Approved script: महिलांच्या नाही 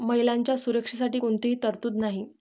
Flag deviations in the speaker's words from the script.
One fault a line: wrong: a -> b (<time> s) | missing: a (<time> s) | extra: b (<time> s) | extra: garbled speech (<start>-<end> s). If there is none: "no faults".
extra: सुरक्षेसाठी कोणतीही तरतूद (0.6 s)